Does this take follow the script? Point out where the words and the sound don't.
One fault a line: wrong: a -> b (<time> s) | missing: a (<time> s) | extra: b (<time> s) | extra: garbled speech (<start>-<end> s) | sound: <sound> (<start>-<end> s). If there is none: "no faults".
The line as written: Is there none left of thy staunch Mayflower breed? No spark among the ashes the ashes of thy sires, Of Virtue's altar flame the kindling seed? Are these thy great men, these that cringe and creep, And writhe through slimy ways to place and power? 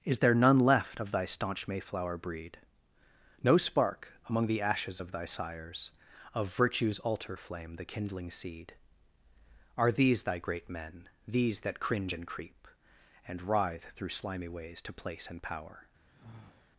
missing: the ashes (5.0 s)
sound: sigh (16.1-16.7 s)